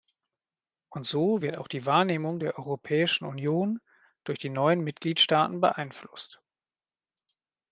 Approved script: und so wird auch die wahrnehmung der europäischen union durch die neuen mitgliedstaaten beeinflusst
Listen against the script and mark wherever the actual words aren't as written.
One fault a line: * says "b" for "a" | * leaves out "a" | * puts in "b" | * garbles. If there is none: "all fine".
all fine